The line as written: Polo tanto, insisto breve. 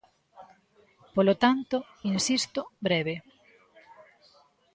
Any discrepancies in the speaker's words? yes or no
no